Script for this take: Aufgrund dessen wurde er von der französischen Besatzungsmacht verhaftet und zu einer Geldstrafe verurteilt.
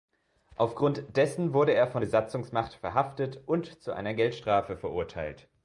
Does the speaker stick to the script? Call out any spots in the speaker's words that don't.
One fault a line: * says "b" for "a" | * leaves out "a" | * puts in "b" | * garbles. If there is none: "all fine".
* leaves out "der französischen"